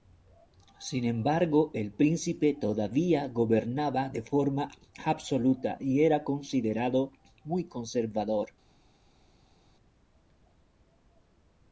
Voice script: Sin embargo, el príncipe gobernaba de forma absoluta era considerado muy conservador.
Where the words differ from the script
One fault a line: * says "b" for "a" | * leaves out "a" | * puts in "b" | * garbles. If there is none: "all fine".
* puts in "todavía"
* puts in "y"